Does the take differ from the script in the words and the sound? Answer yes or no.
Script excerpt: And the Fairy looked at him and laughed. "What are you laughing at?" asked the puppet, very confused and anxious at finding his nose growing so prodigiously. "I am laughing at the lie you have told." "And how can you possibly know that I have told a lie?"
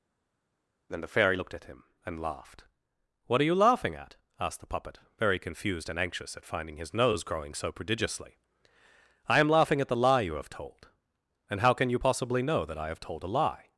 yes